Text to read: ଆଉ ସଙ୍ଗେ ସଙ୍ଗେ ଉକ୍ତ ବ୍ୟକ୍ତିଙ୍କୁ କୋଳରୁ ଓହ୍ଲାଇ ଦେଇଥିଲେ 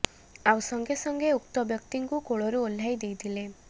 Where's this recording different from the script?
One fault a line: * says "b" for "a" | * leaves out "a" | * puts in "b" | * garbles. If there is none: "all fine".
all fine